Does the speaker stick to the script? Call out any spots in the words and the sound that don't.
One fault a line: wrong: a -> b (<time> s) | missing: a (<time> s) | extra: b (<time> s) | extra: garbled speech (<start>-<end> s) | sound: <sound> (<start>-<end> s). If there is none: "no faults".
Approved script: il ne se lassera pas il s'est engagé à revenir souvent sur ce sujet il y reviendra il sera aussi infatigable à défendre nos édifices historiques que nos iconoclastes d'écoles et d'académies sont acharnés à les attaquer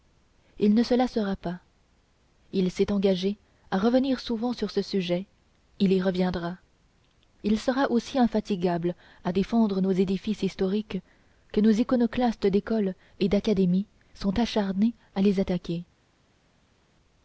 no faults